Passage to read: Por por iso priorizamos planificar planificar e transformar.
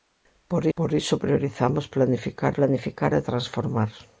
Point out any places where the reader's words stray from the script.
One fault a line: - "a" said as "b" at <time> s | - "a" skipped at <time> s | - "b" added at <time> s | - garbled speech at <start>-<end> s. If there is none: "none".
none